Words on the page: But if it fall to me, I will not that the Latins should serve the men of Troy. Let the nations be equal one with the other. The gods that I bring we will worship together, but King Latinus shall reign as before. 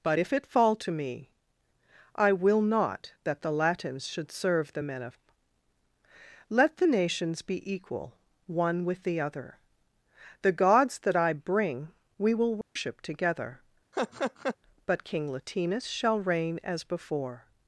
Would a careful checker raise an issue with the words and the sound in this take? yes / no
yes